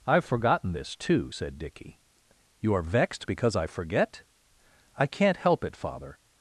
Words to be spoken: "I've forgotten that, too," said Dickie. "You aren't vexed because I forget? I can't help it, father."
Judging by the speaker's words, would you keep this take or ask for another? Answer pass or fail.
fail